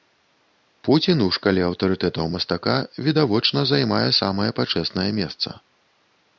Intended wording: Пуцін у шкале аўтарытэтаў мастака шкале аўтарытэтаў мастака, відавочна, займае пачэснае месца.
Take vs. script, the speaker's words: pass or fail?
fail